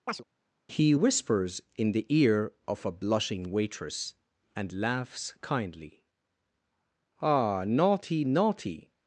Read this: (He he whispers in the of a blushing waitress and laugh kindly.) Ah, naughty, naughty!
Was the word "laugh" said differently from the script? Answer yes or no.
yes